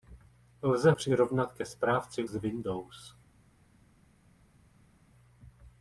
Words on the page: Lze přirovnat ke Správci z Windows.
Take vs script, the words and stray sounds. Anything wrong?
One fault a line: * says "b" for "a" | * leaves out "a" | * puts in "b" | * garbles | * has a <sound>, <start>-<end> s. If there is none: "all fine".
all fine